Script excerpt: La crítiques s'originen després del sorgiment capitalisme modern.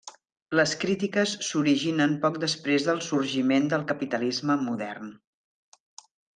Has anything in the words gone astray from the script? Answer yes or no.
yes